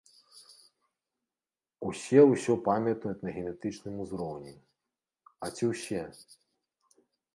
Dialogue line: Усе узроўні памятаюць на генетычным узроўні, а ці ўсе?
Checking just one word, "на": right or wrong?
right